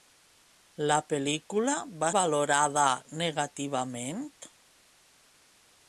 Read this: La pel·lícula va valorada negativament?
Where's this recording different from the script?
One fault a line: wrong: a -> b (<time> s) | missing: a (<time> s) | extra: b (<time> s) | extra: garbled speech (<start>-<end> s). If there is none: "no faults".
no faults